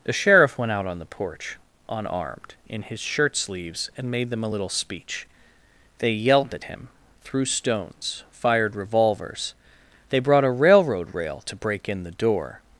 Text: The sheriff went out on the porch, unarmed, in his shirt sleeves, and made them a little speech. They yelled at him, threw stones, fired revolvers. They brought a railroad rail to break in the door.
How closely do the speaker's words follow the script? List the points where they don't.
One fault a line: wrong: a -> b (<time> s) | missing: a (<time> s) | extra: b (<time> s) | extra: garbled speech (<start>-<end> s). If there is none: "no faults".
no faults